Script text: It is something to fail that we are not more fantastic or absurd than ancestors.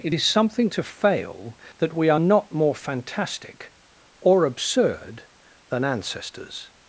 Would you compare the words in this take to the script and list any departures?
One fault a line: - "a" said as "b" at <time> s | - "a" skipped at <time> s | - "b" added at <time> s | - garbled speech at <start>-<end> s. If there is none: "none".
none